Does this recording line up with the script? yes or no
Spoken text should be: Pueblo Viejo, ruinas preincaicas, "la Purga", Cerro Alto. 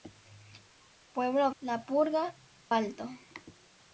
no